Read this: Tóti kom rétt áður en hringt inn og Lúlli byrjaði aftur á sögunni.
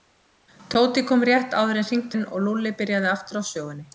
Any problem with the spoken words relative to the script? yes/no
no